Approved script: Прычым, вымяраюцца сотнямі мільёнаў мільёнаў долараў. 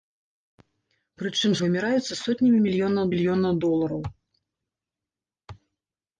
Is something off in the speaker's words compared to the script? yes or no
no